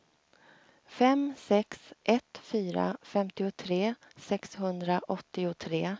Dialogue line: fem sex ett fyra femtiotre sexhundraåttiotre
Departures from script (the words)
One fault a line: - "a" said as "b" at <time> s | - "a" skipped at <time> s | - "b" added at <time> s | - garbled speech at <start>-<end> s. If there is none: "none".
none